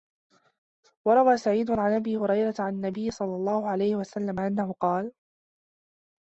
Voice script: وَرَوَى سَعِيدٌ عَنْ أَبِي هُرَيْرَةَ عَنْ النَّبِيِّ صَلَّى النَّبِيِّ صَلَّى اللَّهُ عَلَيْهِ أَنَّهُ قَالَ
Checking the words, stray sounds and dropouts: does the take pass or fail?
fail